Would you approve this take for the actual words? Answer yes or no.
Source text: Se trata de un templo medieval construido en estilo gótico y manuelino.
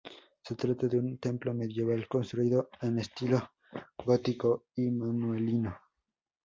yes